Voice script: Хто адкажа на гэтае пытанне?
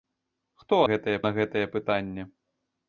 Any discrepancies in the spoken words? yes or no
yes